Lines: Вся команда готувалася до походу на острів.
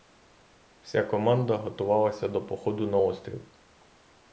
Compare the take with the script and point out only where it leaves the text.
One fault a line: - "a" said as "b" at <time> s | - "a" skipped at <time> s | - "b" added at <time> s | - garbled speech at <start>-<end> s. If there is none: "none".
none